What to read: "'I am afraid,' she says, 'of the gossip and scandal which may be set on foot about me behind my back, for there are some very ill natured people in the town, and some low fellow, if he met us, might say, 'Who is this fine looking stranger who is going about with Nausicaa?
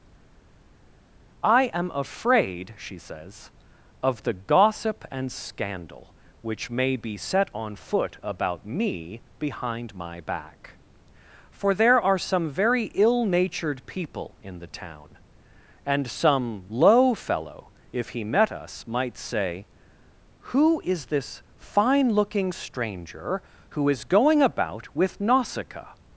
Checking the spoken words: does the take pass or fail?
pass